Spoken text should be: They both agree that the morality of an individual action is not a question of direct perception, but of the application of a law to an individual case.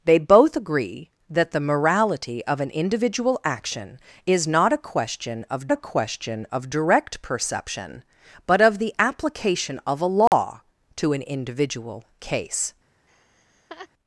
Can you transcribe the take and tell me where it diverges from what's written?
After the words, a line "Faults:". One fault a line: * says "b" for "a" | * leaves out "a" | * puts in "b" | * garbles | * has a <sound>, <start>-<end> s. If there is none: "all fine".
They both agree that the morality of an individual action is not a question of a question of direct perception, but of the application of a law to an individual case.
Faults:
* puts in "a question of"
* has a dropout, 10.3-10.3 s
* has a laugh, 13.1-13.9 s